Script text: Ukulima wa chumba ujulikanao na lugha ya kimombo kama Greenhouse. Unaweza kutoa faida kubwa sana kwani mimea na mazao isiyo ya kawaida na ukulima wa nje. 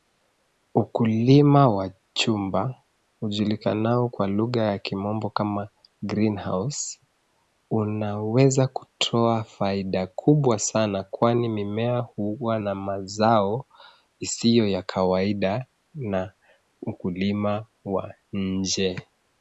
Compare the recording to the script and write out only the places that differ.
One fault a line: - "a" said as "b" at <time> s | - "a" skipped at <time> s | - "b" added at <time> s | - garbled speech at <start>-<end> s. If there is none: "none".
- "na" said as "kwa" at 4.1 s
- "huwa" added at 12.0 s